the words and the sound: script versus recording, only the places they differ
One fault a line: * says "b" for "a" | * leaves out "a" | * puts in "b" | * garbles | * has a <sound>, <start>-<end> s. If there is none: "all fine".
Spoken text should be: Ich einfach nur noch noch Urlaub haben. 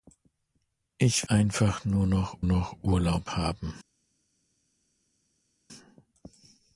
all fine